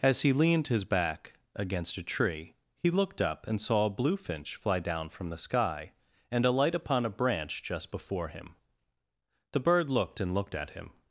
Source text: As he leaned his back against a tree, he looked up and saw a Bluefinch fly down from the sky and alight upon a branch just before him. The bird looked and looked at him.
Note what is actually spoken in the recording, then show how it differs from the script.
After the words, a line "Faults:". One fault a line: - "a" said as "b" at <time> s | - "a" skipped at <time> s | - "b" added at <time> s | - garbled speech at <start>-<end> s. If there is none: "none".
As he leaned his back against a tree, he looked up and saw a Bluefinch fly down from the sky and alight upon a branch just before him. The bird looked and looked at him.
Faults:
none